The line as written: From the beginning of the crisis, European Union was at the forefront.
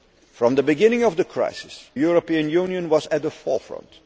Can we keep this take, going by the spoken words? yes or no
yes